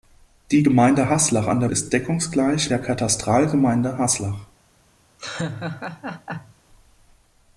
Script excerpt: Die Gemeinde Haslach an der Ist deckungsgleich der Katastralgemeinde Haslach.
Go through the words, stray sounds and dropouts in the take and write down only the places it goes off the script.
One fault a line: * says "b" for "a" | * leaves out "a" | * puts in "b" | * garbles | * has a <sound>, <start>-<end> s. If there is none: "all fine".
* has a laugh, 5.2-6.6 s